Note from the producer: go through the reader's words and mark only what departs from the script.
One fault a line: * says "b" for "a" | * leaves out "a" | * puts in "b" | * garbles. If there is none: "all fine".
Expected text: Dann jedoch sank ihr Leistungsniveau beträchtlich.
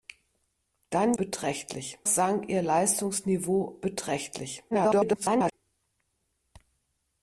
* says "beträchtlich" for "jedoch"
* garbles